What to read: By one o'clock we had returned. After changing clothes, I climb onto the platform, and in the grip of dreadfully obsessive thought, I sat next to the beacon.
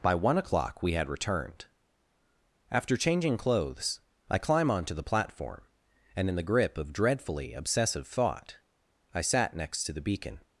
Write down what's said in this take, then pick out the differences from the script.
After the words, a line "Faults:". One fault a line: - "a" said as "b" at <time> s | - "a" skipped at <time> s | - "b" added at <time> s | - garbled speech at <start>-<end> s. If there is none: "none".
By one o'clock we had returned. After changing clothes, I climb onto the platform, and in the grip of dreadfully obsessive thought, I sat next to the beacon.
Faults:
none